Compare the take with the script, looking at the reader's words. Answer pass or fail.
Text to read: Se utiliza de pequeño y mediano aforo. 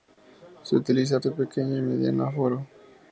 pass